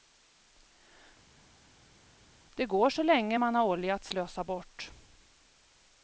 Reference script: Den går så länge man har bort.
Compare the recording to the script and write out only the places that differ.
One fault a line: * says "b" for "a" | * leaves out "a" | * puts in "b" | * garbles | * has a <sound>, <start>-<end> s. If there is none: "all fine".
* says "Det" for "Den"
* puts in "olja att slösa"